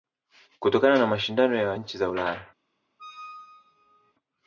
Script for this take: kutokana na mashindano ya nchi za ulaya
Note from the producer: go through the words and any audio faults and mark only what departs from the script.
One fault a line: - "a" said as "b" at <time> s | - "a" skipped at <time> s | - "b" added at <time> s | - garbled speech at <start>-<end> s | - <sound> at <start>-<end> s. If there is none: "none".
- squeak at 3.0-4.1 s